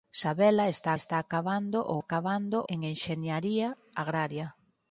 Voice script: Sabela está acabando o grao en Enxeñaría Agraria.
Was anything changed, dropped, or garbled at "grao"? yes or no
yes